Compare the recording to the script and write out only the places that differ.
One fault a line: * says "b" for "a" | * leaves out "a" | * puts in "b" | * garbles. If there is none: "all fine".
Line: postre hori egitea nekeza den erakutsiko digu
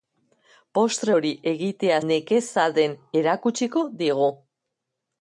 all fine